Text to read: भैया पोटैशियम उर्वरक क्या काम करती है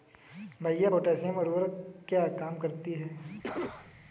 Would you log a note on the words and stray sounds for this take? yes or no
yes